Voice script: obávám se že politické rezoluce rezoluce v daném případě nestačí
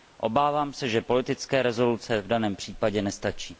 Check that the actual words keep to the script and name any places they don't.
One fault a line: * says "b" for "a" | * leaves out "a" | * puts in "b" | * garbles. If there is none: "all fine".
* leaves out "rezoluce"